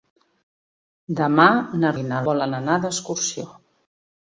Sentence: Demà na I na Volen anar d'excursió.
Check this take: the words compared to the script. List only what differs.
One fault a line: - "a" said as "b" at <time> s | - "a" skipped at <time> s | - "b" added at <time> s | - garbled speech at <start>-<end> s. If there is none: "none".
none